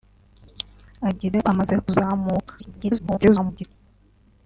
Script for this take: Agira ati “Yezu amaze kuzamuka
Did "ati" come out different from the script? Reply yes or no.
yes